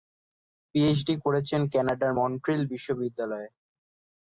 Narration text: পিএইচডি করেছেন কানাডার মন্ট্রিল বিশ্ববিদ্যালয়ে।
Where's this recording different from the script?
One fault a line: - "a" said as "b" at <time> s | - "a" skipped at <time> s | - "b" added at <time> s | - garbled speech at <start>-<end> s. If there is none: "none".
none